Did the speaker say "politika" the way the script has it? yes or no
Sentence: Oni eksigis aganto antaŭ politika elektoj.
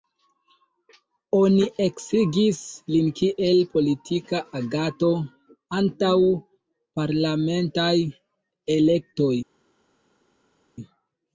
no